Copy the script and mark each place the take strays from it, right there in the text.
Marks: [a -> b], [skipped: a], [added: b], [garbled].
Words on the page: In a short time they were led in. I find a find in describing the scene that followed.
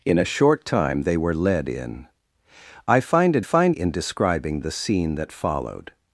In a short time they were led in. I find a find in describing the scene that followed.